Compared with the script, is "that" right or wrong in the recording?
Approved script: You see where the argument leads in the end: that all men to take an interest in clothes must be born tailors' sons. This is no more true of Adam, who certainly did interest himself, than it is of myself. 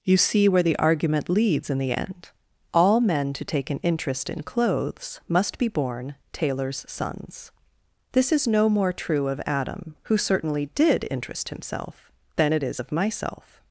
wrong